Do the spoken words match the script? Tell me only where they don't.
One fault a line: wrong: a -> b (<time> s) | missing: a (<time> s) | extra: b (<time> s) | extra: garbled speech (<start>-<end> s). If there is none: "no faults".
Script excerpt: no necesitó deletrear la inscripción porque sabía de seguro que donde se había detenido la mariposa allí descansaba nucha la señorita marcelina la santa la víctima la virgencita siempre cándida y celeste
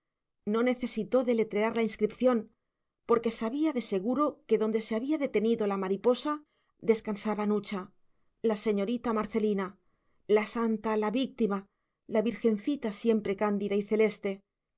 missing: allí (6.4 s)